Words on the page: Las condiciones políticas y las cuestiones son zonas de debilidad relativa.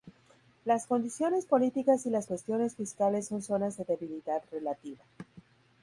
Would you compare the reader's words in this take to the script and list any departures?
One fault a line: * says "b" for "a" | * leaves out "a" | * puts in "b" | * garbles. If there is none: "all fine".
* puts in "fiscales"